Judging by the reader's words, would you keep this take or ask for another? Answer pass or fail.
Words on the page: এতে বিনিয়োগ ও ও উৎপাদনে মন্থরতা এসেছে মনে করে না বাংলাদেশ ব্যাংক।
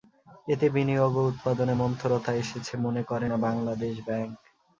fail